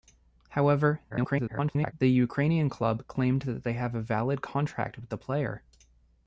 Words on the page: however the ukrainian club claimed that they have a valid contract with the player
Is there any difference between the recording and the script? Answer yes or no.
yes